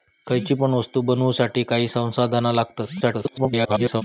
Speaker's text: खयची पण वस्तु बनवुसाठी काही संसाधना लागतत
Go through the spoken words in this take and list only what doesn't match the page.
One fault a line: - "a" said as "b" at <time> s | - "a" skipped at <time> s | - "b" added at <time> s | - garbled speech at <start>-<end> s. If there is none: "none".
- garbled speech at 3.0-4.0 s